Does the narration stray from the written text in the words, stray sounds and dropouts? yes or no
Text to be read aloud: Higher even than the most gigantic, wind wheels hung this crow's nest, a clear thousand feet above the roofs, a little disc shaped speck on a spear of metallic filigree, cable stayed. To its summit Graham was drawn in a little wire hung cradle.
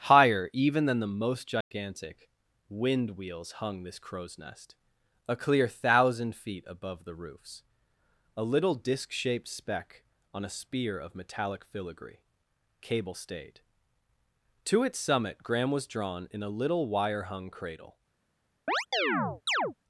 yes